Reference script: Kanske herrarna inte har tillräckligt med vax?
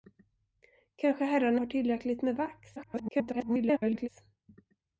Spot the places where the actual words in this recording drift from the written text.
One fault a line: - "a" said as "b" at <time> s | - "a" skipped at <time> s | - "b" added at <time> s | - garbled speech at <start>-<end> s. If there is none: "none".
- "inte" skipped at 1.6 s
- garbled speech at 2.8-4.1 s